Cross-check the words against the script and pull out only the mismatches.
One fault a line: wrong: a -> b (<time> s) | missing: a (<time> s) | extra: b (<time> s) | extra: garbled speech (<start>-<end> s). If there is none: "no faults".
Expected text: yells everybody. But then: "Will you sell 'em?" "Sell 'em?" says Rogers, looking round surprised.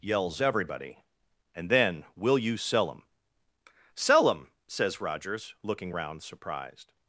wrong: But -> And (1.6 s)